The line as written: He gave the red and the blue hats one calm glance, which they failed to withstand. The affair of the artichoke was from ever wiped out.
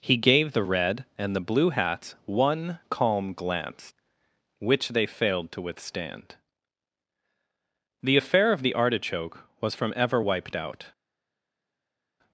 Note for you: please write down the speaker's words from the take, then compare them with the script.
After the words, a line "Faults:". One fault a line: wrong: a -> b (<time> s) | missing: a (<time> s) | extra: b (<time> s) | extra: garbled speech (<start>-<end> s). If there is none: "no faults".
He gave the red and the blue hats one calm glance, which they failed to withstand. The affair of the artichoke was from ever wiped out.
Faults:
no faults